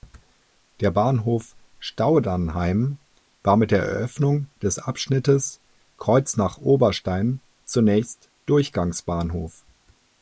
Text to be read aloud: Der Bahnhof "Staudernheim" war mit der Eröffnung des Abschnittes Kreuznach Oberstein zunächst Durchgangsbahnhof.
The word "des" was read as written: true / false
true